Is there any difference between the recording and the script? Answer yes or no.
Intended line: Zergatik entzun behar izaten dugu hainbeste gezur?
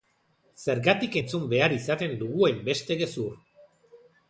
no